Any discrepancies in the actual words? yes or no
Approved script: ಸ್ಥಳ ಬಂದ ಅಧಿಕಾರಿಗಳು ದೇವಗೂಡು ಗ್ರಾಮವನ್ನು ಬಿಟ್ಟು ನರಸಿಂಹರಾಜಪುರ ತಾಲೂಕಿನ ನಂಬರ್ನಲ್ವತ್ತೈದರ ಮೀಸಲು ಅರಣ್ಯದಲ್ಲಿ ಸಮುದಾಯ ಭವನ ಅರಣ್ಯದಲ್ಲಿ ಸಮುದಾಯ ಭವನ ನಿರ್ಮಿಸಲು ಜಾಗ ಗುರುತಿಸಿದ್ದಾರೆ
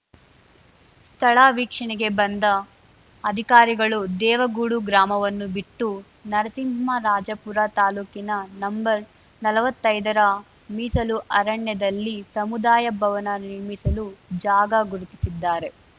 yes